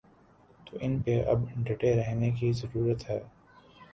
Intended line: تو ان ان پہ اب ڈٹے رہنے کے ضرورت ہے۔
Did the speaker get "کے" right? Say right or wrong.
wrong